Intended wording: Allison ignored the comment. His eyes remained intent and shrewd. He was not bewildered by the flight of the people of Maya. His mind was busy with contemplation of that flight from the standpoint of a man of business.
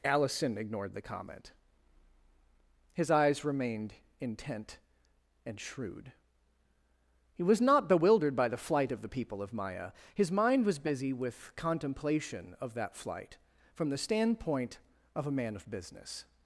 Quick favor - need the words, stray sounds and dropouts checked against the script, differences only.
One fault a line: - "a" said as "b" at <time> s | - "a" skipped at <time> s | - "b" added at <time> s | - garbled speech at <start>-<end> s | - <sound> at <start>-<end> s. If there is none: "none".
none